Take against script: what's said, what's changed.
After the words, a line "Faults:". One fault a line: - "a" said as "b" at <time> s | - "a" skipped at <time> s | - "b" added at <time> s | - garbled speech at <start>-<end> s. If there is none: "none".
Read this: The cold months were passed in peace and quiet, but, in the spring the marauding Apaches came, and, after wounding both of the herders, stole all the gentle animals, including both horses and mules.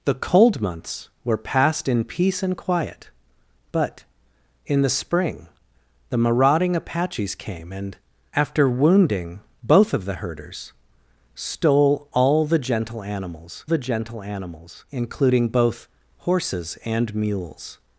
The cold months were passed in peace and quiet, but, in the spring the marauding Apaches came, and, after wounding both of the herders, stole all the gentle animals the gentle animals, including both horses and mules.
Faults:
- "the gentle animals" added at 13.6 s